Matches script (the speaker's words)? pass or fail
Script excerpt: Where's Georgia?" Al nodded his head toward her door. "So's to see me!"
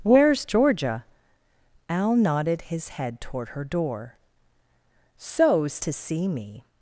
pass